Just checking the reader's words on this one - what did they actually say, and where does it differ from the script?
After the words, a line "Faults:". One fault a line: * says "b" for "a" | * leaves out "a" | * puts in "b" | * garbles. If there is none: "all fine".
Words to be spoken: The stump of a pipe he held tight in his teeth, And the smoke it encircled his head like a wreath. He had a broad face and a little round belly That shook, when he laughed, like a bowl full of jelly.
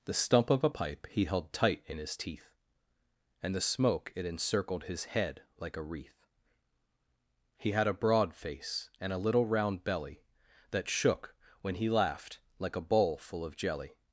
The stump of a pipe he held tight in his teeth, And the smoke it encircled his head like a wreath. He had a broad face and a little round belly That shook, when he laughed, like a bowl full of jelly.
Faults:
all fine